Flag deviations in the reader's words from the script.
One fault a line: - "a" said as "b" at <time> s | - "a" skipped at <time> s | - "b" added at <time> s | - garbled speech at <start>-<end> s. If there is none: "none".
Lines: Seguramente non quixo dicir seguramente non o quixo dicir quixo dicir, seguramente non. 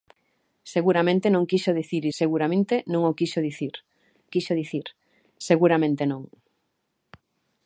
none